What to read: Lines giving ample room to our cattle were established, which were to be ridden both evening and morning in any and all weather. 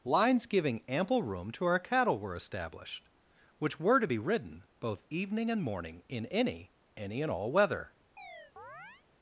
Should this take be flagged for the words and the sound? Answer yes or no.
yes